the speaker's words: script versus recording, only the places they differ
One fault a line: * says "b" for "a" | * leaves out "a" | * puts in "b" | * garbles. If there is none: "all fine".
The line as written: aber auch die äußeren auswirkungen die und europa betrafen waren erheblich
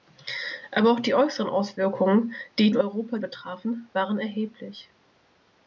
all fine